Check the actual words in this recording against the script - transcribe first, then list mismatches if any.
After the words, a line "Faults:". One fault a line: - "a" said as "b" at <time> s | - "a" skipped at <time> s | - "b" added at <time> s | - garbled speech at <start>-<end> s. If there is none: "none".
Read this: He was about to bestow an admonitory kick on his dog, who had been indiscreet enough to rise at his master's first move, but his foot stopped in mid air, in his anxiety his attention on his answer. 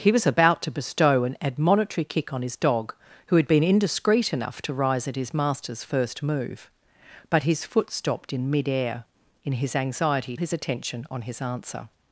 He was about to bestow an admonitory kick on his dog, who had been indiscreet enough to rise at his master's first move, but his foot stopped in mid air, in his anxiety his attention on his answer.
Faults:
none